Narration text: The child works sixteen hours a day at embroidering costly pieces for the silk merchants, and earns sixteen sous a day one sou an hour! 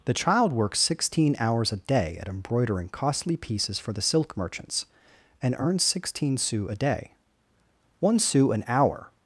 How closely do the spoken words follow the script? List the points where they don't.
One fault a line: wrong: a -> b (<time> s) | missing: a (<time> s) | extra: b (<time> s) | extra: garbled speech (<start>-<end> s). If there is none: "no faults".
no faults